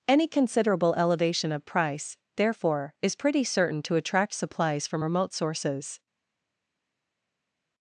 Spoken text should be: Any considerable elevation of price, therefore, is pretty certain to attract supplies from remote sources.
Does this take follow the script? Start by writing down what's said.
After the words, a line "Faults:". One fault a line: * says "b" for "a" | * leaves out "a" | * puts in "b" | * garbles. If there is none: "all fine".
Any considerable elevation of price, therefore, is pretty certain to attract supplies from remote sources.
Faults:
all fine